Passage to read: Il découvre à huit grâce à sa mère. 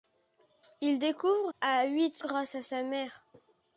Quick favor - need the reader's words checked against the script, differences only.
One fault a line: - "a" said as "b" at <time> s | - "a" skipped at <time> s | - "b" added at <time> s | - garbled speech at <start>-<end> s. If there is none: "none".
none